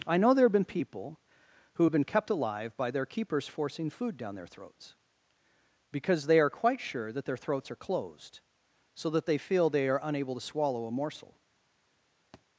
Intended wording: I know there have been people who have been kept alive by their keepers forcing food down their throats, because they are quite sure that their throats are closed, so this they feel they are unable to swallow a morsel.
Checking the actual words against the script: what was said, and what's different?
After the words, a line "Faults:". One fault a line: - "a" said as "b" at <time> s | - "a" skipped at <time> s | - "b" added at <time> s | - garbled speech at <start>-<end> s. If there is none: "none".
I know there have been people who have been kept alive by their keepers forcing food down their throats, because they are quite sure that their throats are closed, so that they feel they are unable to swallow a morsel.
Faults:
- "this" said as "that" at 9.1 s